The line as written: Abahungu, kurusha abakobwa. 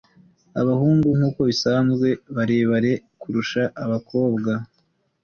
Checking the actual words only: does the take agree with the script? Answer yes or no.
no